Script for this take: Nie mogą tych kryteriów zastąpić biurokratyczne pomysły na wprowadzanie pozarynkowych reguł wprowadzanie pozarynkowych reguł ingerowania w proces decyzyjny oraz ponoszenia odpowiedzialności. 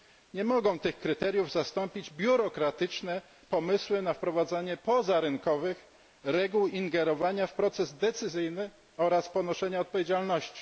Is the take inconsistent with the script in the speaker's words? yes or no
yes